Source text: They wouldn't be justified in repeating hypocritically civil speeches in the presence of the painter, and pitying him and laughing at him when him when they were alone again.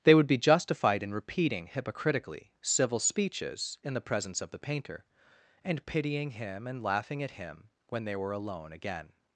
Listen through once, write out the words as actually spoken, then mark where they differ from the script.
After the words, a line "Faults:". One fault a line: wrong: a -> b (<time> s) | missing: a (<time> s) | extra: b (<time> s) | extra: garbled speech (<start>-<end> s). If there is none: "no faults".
They would be justified in repeating hypocritically civil speeches in the presence of the painter, and pitying him and laughing at him when they were alone again.
Faults:
wrong: wouldn't -> would (0.1 s)
missing: him when (8.1 s)